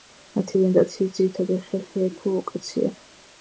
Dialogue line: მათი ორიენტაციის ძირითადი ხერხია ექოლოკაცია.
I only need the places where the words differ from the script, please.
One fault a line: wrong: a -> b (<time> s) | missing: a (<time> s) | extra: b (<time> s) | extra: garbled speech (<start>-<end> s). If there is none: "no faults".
no faults